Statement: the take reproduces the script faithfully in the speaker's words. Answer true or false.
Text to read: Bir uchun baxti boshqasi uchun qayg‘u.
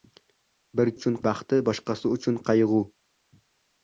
true